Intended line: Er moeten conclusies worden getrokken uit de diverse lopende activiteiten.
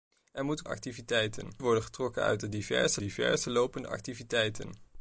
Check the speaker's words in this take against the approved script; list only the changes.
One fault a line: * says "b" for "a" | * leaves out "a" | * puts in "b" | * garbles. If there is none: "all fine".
* says "activiteiten" for "conclusies"
* puts in "diverse"